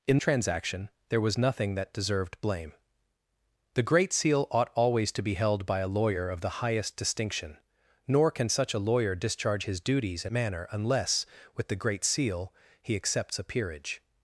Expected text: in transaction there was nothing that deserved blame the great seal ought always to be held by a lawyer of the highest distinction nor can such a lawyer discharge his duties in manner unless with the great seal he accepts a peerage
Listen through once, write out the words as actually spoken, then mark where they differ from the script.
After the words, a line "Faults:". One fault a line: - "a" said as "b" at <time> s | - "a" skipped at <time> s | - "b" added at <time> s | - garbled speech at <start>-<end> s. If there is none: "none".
in transaction there was nothing that deserved blame the great seal ought always to be held by a lawyer of the highest distinction nor can such a lawyer discharge his duties in manner unless with the great seal he accepts a peerage
Faults:
none